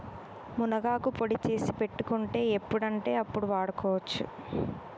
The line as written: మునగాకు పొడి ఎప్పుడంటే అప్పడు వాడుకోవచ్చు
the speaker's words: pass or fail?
fail